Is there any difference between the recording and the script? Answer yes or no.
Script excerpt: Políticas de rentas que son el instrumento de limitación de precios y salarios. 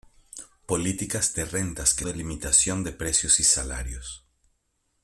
yes